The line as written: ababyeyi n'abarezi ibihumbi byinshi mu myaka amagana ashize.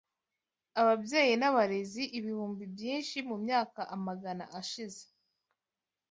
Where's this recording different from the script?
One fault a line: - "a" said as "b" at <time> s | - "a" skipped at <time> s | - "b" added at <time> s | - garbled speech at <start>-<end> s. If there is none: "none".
none